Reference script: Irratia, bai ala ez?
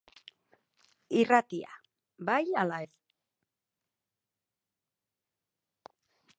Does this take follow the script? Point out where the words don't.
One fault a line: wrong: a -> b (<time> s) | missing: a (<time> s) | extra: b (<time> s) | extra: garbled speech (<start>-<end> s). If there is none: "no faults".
no faults